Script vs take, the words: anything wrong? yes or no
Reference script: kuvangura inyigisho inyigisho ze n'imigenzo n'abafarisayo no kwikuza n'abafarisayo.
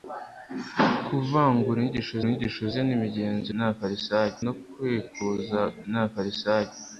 no